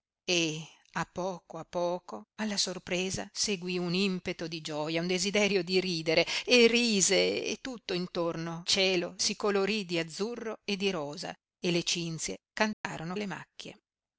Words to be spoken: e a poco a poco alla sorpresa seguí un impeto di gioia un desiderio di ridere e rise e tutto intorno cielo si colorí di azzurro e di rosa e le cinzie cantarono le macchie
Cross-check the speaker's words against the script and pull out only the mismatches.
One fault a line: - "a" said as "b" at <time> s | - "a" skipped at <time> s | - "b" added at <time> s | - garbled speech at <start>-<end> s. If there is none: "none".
none